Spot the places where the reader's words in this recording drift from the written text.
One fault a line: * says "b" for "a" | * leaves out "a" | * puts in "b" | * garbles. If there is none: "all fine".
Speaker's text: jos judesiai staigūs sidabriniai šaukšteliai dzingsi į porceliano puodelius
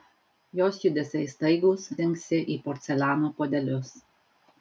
* leaves out "sidabriniai šaukšteliai"